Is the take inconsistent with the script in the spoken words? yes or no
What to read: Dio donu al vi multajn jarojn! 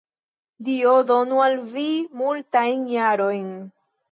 no